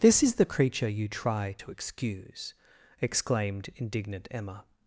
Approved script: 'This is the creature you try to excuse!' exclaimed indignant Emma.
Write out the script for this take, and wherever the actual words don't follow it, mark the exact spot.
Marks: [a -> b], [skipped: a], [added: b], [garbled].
'This is the creature you try to excuse!' exclaimed indignant Emma.